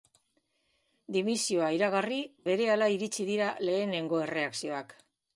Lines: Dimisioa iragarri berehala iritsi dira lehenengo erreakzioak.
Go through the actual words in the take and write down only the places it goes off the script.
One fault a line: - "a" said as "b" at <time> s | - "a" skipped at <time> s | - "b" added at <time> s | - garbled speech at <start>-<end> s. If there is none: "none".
none